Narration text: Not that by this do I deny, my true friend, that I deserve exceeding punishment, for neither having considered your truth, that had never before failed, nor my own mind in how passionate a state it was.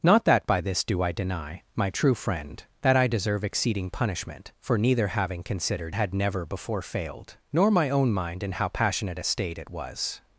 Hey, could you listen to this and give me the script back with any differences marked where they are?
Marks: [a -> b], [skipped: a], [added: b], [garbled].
Not that by this do I deny, my true friend, that I deserve exceeding punishment, for neither having considered [skipped: your truth, that] had never before failed, nor my own mind in how passionate a state it was.